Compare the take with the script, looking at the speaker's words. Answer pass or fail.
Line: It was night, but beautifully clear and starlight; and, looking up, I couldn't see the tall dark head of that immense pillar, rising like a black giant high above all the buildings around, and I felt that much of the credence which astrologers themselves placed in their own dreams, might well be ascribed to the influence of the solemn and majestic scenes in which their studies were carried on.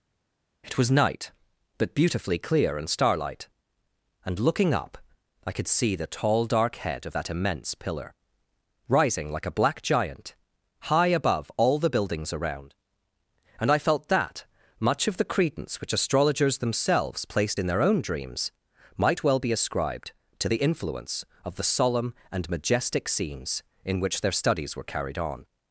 fail